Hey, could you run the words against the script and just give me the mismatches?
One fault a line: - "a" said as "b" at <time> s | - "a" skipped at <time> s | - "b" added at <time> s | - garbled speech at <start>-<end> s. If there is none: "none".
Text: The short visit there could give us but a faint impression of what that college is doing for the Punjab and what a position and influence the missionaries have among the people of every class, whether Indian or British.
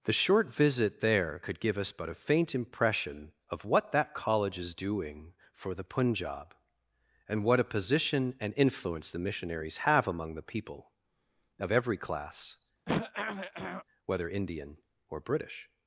none